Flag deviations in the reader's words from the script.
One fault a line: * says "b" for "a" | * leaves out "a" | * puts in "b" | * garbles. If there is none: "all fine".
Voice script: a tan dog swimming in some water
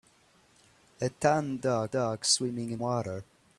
* puts in "dog"
* leaves out "some"